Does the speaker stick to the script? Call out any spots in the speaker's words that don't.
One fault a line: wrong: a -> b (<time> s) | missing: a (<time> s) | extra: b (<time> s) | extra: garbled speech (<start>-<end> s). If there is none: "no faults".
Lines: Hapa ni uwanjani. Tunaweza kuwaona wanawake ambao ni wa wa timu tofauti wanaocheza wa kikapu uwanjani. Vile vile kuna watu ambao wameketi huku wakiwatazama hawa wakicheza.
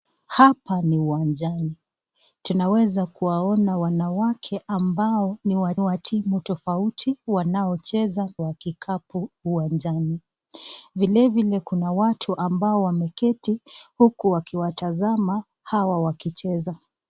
no faults